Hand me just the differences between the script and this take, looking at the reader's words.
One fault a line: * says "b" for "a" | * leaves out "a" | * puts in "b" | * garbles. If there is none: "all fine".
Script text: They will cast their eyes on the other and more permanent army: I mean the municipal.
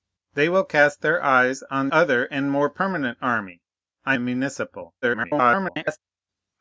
* leaves out "the"
* leaves out "mean"
* garbles